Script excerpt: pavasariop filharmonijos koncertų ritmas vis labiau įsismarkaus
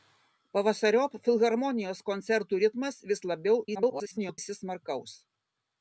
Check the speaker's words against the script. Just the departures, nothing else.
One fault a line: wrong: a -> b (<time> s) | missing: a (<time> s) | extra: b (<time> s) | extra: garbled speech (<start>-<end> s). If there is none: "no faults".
extra: garbled speech (3.7-4.4 s)